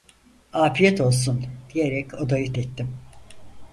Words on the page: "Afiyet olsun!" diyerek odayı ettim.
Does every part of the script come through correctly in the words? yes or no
yes